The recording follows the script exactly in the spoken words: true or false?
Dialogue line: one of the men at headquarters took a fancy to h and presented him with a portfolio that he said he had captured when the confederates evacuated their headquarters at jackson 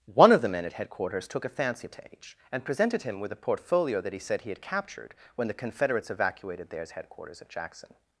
false